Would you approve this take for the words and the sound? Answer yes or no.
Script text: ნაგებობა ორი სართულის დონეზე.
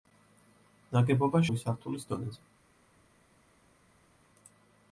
yes